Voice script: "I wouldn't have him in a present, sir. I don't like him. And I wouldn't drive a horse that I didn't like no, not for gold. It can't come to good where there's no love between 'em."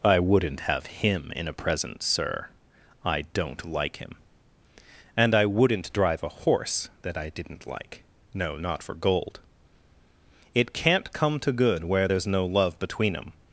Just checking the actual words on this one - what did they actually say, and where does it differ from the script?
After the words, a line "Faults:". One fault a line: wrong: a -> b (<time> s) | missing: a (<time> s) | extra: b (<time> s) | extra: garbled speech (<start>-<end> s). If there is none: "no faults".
"I wouldn't have him in a present, sir. I don't like him. And I wouldn't drive a horse that I didn't like no, not for gold. It can't come to good where there's no love between 'em."
Faults:
no faults